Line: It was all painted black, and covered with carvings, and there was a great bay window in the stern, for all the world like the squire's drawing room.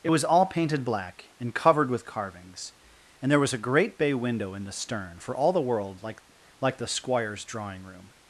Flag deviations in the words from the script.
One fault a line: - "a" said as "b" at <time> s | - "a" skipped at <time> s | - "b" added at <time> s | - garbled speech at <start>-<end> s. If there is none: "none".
- "like" added at 6.6 s